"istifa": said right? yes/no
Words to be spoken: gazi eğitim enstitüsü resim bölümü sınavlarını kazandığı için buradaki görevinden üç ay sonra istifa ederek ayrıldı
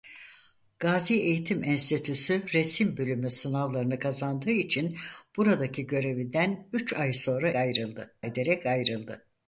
no